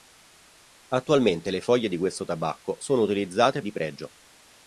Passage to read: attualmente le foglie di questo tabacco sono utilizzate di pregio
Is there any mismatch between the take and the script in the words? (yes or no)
no